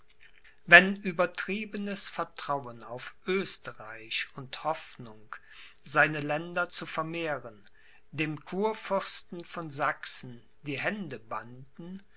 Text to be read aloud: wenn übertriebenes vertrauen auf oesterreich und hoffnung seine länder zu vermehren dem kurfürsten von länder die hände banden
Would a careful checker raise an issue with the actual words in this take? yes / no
yes